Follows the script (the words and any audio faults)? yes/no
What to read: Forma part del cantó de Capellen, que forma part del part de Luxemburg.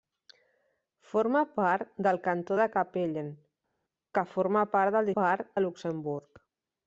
yes